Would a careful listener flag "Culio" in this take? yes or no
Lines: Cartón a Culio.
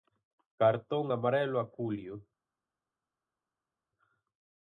no